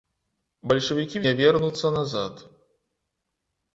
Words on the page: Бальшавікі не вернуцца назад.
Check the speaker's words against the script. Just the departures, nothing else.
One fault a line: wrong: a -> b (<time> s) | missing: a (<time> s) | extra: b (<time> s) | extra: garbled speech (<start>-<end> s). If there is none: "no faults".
no faults